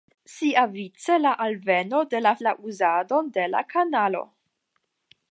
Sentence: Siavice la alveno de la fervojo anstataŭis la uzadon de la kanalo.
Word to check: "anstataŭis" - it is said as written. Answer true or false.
false